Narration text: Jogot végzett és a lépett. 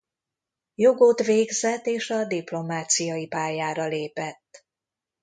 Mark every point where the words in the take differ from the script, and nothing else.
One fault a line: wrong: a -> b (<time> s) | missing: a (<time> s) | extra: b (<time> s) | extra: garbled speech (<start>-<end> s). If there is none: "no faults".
extra: diplomáciai pályára (2.2 s)